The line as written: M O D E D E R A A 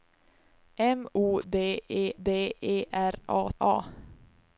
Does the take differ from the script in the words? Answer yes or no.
no